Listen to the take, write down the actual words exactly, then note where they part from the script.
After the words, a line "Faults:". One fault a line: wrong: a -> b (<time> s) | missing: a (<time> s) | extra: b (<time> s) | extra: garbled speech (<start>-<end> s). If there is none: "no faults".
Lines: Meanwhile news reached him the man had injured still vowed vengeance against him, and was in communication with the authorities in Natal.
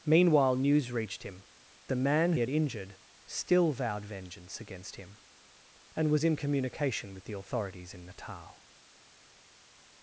Meanwhile news reached him the man had injured still vowed vengeance against him, and was in communication with the authorities in Natal.
Faults:
no faults